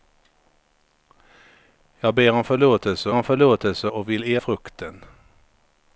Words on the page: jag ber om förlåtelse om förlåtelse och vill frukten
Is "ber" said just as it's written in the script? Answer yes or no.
yes